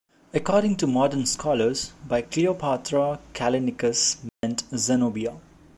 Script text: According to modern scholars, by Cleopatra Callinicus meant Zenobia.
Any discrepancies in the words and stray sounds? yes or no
yes